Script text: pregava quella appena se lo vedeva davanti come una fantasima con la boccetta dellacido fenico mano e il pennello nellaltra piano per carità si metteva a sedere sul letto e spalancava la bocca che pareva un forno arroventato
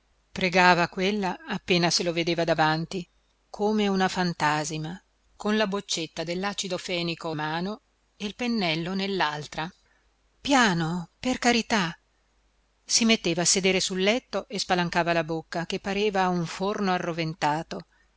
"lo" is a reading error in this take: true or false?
false